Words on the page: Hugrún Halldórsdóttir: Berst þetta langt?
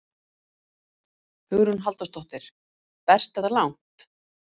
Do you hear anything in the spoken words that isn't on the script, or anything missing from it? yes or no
no